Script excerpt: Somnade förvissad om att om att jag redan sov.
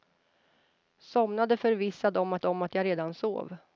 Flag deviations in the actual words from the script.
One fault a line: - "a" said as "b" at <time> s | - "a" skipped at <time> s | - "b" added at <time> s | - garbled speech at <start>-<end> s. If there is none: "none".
none